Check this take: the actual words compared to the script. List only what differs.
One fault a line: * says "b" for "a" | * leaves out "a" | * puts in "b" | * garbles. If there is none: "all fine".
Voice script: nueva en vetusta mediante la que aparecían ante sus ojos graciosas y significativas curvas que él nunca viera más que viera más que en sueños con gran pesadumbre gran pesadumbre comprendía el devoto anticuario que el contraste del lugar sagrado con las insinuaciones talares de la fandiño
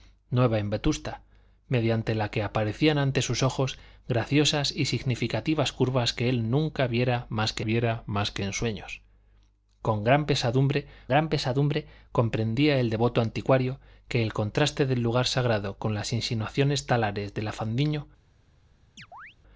all fine